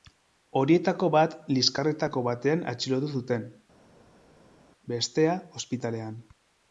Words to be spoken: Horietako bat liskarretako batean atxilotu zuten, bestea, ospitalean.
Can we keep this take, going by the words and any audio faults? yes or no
yes